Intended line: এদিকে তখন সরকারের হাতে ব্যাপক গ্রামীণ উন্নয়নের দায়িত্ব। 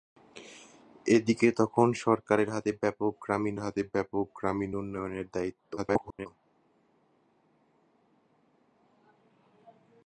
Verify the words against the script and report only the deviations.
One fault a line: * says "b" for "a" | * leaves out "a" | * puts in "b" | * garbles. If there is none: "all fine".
* puts in "হাতে ব্যাপক গ্রামীণ"
* garbles